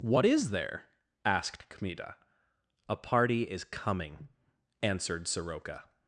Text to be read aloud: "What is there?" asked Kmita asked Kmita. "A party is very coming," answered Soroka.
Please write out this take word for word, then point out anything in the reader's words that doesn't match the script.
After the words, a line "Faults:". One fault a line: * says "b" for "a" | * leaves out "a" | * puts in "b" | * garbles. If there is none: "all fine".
"What is there?" asked Kmita. "A party is coming," answered Soroka.
Faults:
* leaves out "asked Kmita"
* leaves out "very"